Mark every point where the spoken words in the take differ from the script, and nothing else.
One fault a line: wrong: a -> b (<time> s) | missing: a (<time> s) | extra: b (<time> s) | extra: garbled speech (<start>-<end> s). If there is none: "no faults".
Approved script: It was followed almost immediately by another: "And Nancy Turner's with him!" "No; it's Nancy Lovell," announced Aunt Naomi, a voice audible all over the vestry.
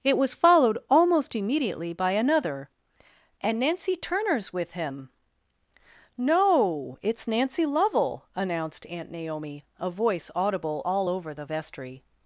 no faults